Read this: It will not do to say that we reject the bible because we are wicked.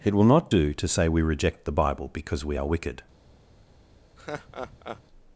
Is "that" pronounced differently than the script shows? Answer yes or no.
yes